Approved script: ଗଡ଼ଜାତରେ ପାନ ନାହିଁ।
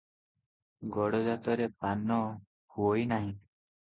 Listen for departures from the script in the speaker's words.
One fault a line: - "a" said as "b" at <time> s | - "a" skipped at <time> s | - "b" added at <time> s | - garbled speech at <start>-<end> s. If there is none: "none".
- "ହୁଅଇ" added at 2.7 s